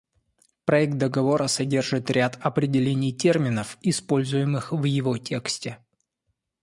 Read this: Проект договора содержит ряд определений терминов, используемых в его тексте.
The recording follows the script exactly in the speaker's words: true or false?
true